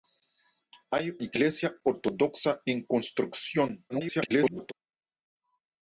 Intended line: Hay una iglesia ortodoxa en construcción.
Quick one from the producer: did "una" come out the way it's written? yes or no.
no